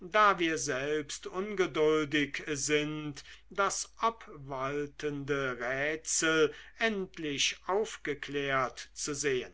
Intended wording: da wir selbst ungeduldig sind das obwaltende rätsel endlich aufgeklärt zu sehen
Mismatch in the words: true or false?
false